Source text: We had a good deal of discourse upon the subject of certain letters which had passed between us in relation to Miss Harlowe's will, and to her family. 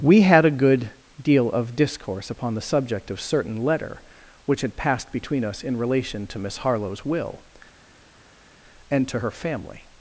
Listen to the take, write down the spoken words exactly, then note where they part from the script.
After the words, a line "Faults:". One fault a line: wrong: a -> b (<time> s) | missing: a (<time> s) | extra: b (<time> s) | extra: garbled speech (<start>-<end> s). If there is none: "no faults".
We had a good deal of discourse upon the subject of certain letter which had passed between us in relation to Miss Harlowe's will, and to her family.
Faults:
wrong: letters -> letter (3.6 s)